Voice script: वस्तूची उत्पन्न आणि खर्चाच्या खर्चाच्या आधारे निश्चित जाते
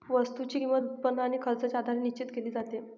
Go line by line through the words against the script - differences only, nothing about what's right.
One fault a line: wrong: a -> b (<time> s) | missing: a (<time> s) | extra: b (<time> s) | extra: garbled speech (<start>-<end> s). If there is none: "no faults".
extra: किंमत (0.5 s)
missing: खर्चाच्या (1.8 s)
extra: केली (2.4 s)